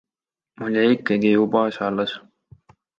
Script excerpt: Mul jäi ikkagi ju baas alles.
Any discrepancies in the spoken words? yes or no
no